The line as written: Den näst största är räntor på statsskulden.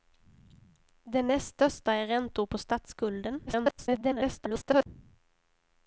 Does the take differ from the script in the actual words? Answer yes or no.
yes